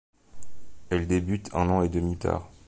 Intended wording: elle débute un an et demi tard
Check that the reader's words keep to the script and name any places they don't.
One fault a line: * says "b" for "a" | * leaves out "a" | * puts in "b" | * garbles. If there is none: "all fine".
all fine